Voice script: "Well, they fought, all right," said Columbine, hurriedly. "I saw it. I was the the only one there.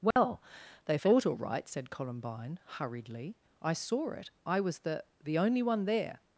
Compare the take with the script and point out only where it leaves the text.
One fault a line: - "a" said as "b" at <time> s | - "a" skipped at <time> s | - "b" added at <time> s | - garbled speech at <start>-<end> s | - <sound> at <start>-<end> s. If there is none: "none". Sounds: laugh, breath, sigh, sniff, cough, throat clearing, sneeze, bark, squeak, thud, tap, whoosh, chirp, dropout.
- dropout at 0.1-0.2 s